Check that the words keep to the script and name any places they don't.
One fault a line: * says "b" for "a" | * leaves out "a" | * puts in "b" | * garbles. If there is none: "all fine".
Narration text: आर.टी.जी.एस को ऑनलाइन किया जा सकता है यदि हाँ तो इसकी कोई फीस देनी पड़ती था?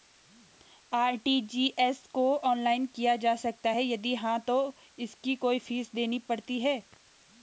* says "है" for "था"